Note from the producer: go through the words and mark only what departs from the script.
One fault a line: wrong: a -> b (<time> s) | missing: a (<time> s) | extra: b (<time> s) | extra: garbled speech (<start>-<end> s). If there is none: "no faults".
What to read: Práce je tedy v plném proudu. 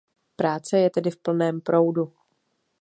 no faults